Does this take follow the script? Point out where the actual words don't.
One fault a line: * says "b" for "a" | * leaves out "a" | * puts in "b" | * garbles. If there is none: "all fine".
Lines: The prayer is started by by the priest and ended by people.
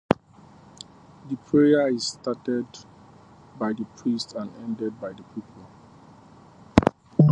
* leaves out "by"
* puts in "the"